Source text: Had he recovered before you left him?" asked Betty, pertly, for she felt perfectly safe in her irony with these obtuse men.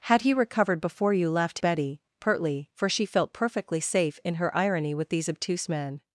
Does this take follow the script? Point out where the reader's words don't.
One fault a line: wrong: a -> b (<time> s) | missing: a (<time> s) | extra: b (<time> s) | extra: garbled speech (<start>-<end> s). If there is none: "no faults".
missing: him asked (1.6 s)